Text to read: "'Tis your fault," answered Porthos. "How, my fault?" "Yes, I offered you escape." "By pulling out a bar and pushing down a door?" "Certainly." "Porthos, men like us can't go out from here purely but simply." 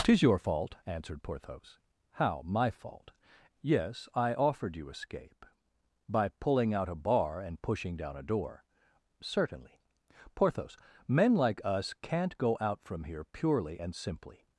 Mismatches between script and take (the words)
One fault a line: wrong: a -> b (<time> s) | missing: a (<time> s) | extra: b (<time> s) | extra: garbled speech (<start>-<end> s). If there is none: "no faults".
wrong: but -> and (13.8 s)